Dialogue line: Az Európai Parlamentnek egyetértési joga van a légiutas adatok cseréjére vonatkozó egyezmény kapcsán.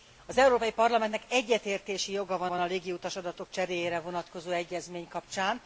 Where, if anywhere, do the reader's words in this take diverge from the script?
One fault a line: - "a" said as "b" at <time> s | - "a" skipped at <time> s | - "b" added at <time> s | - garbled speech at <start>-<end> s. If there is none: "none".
- "van" added at 2.5 s